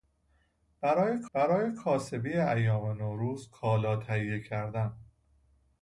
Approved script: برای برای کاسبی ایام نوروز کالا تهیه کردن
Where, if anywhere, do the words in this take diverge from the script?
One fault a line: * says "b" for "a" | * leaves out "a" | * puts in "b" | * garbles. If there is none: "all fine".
all fine